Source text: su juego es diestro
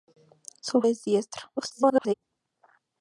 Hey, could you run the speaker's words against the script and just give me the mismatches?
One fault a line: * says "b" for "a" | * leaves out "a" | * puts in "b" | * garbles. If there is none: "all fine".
* leaves out "juego"
* garbles